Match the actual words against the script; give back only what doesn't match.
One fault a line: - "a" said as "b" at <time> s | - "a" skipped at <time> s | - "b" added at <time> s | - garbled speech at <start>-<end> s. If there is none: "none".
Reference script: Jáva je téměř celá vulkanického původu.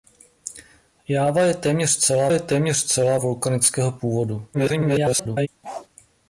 - "je téměř celá" added at 2.3 s
- garbled speech at 4.5-5.5 s